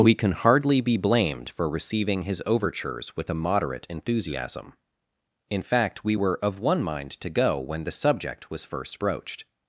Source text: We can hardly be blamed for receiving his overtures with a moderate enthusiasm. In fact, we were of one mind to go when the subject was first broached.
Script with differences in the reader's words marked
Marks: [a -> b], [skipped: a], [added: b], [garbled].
We can hardly be blamed for receiving his overtures with a moderate enthusiasm. In fact, we were of one mind to go when the subject was first broached.